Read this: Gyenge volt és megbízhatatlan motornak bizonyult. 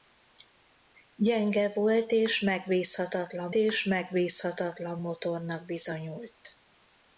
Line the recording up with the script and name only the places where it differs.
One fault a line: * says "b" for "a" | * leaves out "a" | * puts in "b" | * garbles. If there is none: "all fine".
* puts in "és megbízhatatlan"